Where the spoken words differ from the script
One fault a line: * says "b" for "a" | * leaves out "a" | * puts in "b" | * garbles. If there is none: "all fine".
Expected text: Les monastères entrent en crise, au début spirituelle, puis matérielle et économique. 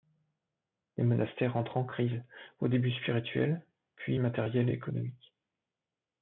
all fine